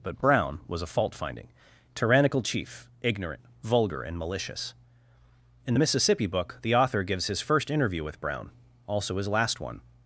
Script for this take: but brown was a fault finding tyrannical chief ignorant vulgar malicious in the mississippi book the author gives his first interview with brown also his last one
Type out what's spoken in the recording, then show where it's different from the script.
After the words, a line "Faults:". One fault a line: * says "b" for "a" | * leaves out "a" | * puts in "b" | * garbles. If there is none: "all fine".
but brown was a fault finding tyrannical chief ignorant vulgar and malicious in the mississippi book the author gives his first interview with brown also his last one
Faults:
* puts in "and"